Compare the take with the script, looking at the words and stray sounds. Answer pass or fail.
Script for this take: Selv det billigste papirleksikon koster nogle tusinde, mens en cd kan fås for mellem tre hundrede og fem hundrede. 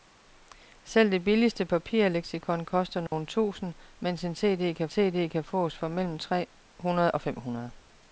fail